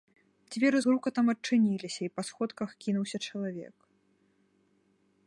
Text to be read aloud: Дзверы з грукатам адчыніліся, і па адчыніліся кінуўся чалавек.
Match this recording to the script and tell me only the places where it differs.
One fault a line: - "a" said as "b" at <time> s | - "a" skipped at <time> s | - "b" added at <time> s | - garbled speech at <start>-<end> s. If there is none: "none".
- "адчыніліся" said as "сходках" at 2.3 s